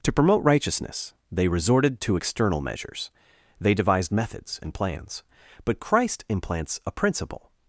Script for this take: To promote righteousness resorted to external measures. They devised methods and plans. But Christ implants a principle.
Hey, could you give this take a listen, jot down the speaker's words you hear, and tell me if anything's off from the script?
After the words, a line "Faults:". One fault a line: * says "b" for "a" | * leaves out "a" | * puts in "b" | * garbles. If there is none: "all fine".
To promote righteousness they resorted to external measures. They devised methods and plans. But Christ implants a principle.
Faults:
* puts in "they"